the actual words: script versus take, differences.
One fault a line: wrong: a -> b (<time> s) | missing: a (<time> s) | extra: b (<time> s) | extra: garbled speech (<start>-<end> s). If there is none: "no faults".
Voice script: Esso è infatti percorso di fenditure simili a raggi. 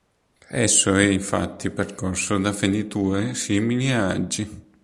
wrong: di -> da (2.4 s)